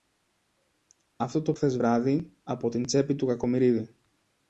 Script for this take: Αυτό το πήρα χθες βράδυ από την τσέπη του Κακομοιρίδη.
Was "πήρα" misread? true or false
true